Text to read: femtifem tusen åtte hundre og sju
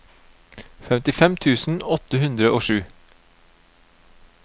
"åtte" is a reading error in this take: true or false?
false